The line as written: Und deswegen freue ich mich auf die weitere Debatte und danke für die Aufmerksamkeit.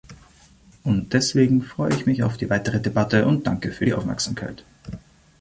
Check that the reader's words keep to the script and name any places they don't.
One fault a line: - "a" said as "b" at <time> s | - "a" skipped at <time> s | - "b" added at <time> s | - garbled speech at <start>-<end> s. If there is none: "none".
none